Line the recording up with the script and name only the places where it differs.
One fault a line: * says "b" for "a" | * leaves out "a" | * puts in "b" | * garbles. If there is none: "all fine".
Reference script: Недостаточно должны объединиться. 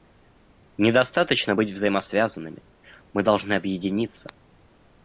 * puts in "быть взаимосвязанными мы"